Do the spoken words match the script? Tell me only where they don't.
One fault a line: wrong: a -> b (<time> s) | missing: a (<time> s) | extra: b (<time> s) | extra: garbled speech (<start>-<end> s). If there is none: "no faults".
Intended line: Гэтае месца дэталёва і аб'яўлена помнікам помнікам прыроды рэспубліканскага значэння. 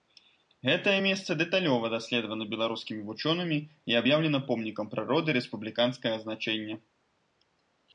extra: даследавана беларускімі вучонымі (2.0 s)
missing: помнікам (4.9 s)